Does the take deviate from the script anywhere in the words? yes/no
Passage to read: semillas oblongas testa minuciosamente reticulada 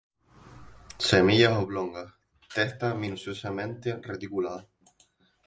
no